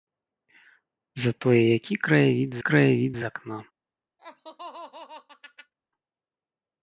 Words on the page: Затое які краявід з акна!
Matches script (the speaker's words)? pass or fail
fail